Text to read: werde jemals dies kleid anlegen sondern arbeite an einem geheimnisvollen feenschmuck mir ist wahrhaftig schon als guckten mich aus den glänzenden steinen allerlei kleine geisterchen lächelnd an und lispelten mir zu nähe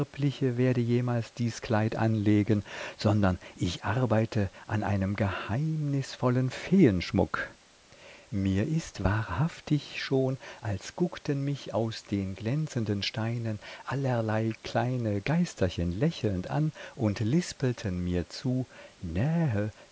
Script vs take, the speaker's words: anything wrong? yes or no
yes